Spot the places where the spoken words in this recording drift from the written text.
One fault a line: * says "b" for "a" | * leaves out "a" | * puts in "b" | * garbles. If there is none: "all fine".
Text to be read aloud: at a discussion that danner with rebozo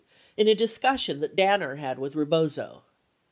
* says "in" for "at"
* puts in "had"